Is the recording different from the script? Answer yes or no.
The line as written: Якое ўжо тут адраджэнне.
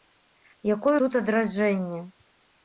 yes